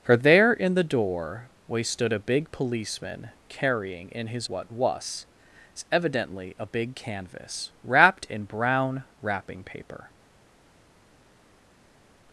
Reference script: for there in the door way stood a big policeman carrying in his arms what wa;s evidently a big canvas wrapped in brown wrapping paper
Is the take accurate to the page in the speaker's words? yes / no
no